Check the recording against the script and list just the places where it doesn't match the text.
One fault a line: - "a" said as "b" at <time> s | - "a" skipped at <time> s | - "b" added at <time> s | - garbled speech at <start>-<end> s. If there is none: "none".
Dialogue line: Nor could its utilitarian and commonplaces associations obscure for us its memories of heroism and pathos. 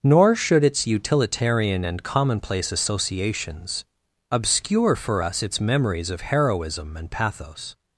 - "could" said as "should" at 0.3 s
- "commonplaces" said as "commonplace" at 2.0 s